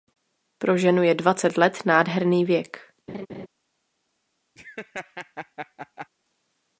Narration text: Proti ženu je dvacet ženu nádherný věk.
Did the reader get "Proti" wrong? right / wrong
wrong